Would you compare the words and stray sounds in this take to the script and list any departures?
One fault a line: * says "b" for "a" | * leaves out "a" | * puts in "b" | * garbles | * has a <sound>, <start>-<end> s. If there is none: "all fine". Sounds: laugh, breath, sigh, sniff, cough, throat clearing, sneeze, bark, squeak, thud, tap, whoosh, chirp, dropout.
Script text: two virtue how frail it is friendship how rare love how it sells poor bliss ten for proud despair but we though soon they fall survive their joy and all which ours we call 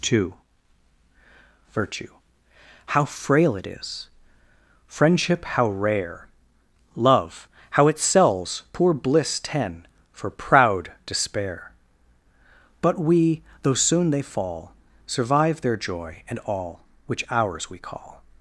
all fine